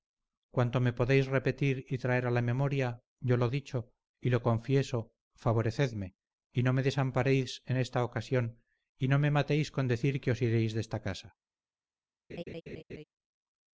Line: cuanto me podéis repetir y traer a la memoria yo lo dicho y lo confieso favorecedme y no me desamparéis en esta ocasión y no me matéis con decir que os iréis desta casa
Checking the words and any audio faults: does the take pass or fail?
fail